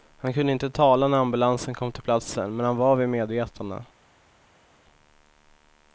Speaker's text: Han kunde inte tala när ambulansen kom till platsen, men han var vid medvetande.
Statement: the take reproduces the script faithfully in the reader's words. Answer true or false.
true